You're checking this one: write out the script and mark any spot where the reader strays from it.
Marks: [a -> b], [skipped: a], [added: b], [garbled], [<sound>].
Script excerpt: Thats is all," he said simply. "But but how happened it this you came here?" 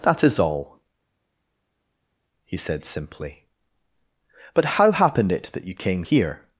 [Thats -> That] is all," he said simply. "But [skipped: but] how happened it [this -> that] you came here?"